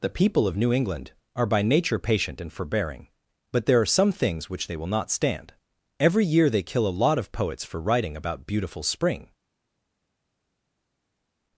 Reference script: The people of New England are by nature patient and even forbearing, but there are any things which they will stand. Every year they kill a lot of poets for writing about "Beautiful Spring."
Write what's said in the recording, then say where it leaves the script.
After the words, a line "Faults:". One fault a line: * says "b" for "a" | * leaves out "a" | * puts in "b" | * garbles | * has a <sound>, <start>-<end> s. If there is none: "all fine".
The people of New England are by nature patient and forbearing, but there are some things which they will not stand. Every year they kill a lot of poets for writing about "Beautiful Spring."
Faults:
* leaves out "even"
* says "some" for "any"
* puts in "not"